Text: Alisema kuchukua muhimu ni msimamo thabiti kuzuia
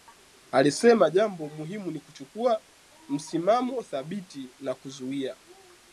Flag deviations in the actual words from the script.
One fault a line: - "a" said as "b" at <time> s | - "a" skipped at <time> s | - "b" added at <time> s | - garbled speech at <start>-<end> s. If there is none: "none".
- "kuchukua" said as "jambo" at 1.1 s
- "kuchukua" added at 2.0 s
- "na" added at 4.6 s